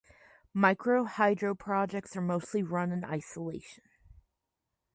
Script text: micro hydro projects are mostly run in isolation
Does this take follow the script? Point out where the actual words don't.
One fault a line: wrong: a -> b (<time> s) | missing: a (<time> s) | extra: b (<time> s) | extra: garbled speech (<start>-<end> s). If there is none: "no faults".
no faults